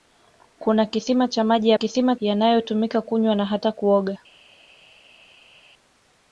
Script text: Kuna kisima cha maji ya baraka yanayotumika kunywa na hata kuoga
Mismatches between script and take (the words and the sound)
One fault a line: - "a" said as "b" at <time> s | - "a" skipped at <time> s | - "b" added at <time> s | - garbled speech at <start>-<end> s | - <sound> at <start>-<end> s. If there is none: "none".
- "baraka" said as "kisima" at 1.7 s